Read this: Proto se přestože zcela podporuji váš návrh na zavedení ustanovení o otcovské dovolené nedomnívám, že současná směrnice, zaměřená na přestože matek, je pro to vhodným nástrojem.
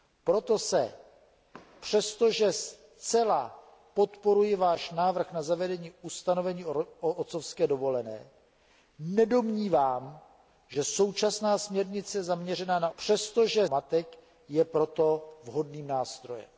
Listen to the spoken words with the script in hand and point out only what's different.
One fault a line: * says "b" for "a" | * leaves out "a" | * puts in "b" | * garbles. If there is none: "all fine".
all fine